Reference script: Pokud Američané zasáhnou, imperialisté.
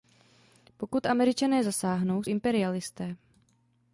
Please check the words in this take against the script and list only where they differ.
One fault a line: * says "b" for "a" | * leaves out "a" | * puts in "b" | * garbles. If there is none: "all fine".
all fine